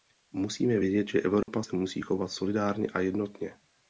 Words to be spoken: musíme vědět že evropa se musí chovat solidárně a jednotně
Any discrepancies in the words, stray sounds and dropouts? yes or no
yes